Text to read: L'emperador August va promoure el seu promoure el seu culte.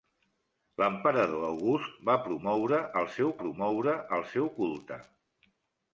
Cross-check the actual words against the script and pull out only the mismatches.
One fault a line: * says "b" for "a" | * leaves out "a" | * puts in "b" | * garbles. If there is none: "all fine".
all fine